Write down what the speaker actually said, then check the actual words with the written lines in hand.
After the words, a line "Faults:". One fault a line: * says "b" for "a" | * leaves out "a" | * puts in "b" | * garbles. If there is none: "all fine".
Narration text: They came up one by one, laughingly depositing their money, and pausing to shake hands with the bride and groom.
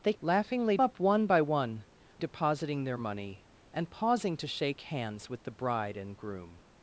They laughingly up one by one, depositing their money, and pausing to shake hands with the bride and groom.
Faults:
* says "laughingly" for "came"
* leaves out "laughingly"